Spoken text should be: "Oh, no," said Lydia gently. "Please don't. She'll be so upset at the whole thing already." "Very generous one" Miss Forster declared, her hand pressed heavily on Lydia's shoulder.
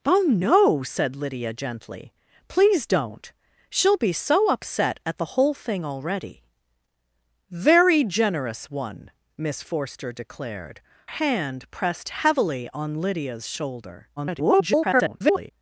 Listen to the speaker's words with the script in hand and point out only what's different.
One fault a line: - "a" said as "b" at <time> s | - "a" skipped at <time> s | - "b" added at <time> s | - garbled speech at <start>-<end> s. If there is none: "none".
- "her" skipped at 10.8 s
- garbled speech at 14.2-15.5 s